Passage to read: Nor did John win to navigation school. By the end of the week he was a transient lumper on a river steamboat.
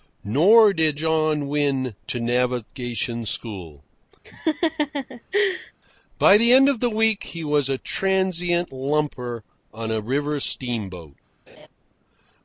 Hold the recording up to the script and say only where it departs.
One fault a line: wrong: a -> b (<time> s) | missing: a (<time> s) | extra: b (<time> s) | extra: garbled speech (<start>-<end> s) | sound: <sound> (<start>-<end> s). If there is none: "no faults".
sound: laugh (4.2-5.7 s)
sound: laugh (11.5-11.7 s)